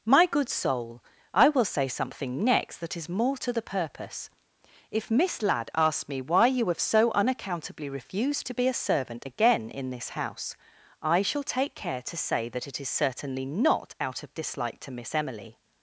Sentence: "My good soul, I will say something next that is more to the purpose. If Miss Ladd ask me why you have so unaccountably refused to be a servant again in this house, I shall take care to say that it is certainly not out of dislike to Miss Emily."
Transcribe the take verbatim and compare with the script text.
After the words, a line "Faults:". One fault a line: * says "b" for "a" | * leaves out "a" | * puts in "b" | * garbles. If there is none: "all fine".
"My good soul, I will say something next that is more to the purpose. If Miss Ladd asks me why you have so unaccountably refused to be a servant again in this house, I shall take care to say that it is certainly not out of dislike to Miss Emily."
Faults:
* says "asks" for "ask"